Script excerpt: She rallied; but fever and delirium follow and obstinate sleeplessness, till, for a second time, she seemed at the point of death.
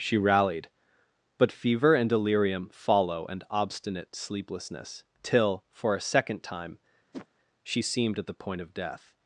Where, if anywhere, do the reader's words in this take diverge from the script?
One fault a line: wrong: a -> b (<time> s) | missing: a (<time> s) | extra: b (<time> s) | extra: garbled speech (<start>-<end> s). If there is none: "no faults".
no faults